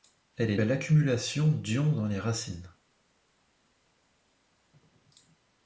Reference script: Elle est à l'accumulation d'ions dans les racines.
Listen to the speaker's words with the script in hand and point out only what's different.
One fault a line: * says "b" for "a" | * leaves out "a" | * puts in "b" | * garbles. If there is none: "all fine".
all fine